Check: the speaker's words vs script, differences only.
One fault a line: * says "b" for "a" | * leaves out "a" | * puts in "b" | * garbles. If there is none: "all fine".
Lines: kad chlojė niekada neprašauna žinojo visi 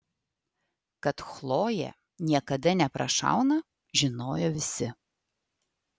all fine